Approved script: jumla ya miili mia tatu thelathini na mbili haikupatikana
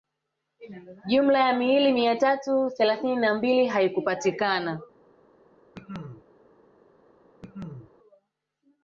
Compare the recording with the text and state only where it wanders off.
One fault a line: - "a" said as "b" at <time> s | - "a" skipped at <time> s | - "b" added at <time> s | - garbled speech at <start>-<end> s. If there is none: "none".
none